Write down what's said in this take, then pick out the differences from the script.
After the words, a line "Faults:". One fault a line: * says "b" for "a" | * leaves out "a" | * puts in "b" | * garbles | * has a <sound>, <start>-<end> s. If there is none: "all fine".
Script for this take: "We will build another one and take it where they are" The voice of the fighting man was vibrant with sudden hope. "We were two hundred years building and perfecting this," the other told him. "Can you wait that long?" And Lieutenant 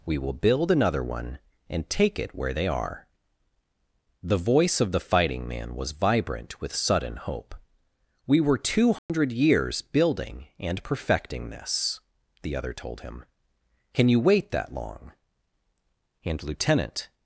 "We will build another one and take it where they are" The voice of the fighting man was vibrant with sudden hope. "We were two hundred years building and perfecting this," the other told him. "Can you wait that long?" And Lieutenant
Faults:
* has a dropout, 9.0-9.1 s